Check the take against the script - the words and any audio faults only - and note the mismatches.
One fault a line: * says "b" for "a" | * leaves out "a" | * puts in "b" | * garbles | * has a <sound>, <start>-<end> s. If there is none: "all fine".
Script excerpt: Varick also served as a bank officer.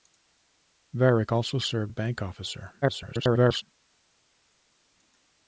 * leaves out "as"
* garbles